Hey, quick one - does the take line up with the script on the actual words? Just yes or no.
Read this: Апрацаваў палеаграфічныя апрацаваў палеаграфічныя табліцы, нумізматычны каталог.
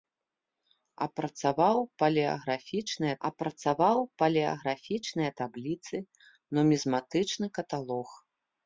yes